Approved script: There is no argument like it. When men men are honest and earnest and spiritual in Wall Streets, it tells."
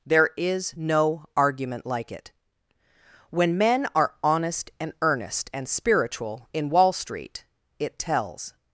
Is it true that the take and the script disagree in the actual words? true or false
true